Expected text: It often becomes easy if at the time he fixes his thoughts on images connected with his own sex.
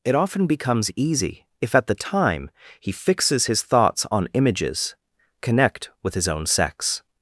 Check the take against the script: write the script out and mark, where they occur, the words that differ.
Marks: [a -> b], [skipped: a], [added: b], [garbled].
It often becomes easy if at the time he fixes his thoughts on images [connected -> connect] with his own sex.